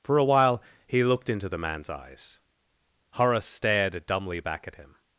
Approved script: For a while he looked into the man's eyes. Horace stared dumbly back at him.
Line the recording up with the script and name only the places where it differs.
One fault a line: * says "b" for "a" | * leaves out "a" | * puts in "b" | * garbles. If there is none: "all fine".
all fine